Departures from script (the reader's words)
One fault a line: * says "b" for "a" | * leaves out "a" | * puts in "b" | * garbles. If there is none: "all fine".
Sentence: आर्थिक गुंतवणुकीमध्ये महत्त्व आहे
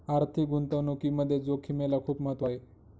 * puts in "जोखिमेला खूप"